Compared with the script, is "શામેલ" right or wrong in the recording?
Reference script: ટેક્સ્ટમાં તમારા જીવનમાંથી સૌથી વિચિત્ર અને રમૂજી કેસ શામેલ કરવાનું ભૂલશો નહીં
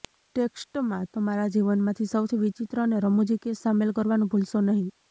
right